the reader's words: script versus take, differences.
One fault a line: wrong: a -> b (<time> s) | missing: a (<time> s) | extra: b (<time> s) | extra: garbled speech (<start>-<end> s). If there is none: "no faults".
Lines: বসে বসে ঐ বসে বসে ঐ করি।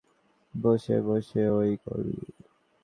missing: বসে বসে ঐ (1.6 s)